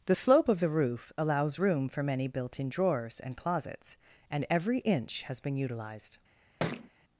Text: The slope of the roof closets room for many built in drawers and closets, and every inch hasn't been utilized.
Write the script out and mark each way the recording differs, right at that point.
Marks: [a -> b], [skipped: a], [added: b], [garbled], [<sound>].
The slope of the roof [closets -> allows] room for many built in drawers and closets, and every inch [hasn't -> has] been utilized. [thud]